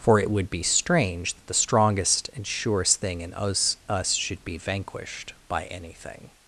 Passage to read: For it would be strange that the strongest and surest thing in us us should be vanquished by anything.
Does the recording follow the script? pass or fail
pass